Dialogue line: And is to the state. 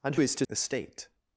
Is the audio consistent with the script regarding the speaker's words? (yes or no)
yes